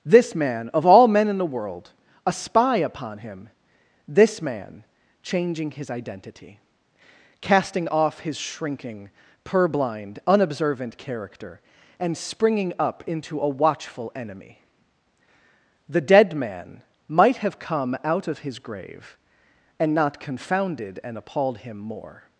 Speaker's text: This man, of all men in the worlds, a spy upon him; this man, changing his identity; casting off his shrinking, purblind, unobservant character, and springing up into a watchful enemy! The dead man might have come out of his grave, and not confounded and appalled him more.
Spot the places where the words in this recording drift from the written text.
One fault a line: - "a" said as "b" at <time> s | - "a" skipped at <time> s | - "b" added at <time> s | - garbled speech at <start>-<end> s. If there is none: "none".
- "worlds" said as "world" at 1.4 s